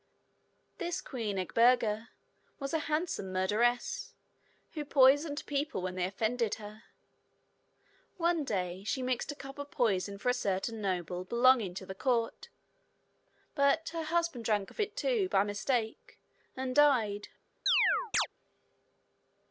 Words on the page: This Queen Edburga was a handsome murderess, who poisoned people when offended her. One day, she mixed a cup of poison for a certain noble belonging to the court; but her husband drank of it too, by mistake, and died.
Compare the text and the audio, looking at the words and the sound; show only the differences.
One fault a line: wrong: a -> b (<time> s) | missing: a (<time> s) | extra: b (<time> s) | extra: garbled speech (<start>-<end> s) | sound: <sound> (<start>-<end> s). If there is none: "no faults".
extra: they (6.0 s)
sound: chirp (17.7-18.3 s)